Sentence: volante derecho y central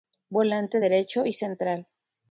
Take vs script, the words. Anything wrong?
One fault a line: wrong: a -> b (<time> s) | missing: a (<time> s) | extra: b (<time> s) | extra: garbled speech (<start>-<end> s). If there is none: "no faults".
no faults